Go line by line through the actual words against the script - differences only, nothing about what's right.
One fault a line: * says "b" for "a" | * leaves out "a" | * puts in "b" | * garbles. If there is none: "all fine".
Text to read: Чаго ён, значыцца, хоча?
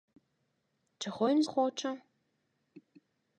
* leaves out "значыцца"